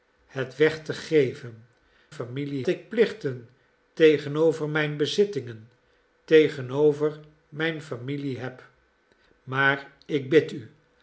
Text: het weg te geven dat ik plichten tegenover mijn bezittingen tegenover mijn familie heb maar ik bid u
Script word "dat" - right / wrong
wrong